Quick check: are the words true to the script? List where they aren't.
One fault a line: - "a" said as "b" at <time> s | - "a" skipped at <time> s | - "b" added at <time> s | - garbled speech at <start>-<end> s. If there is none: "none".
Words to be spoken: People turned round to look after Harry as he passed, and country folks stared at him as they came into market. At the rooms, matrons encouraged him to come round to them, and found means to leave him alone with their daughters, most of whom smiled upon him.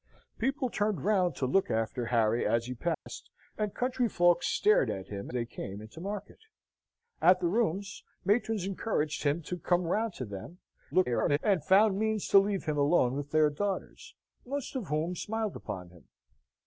- "as" skipped at 5.3 s
- garbled speech at 10.9-11.4 s